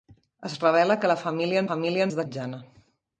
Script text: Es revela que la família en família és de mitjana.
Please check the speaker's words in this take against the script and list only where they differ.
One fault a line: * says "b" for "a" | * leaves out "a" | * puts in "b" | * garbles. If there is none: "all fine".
all fine